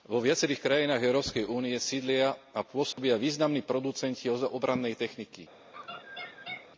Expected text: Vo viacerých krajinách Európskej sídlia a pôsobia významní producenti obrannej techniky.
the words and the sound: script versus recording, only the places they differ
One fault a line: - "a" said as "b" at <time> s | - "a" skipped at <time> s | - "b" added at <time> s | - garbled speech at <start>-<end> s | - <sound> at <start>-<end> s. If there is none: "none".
- "únie" added at 1.4 s
- dropout at 2.9-3.0 s
- laugh at 5.7-6.7 s